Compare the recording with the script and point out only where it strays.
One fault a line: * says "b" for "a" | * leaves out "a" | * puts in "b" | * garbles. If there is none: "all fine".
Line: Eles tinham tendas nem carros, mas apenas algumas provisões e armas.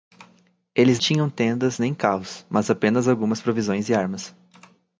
all fine